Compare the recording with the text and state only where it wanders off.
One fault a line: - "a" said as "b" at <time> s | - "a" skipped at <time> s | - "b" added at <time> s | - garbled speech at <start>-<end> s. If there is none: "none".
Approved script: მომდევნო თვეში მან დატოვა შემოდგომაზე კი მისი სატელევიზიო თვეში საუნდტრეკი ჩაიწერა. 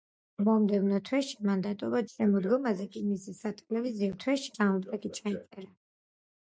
none